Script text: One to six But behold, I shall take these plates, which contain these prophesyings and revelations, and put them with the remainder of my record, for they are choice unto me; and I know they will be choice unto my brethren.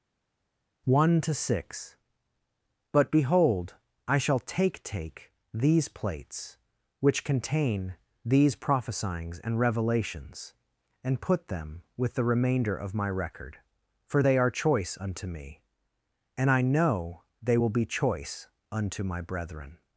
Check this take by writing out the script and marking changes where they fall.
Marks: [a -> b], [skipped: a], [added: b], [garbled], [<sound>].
One to six But behold, I shall take [added: take] these plates, which contain these prophesyings and revelations, and put them with the remainder of my record, for they are choice unto me; and I know they will be choice unto my brethren.